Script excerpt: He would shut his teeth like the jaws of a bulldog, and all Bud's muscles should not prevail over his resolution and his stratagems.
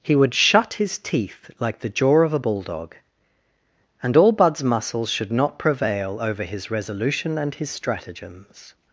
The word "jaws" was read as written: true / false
false